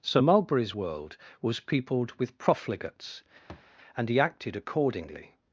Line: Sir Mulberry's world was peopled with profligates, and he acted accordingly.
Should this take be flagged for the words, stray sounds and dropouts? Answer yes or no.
yes